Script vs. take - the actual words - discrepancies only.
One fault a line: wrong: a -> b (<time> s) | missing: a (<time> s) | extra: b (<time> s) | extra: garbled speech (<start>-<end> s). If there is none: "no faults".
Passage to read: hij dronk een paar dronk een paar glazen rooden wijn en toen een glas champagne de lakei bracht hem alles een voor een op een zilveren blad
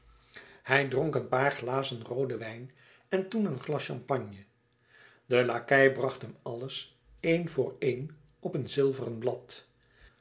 missing: dronk een paar (1.5 s)